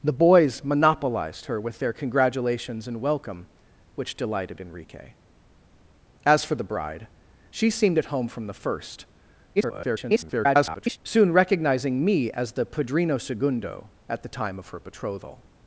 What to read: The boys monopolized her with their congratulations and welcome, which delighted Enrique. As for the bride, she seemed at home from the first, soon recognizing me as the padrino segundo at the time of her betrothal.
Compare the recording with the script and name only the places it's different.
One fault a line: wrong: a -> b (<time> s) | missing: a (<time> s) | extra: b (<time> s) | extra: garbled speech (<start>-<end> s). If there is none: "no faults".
extra: garbled speech (9.6-11.0 s)